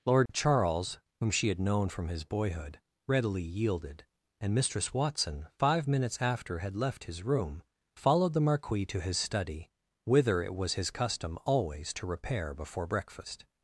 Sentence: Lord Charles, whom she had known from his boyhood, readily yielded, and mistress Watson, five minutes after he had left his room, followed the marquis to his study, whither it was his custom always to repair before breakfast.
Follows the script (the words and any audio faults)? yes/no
no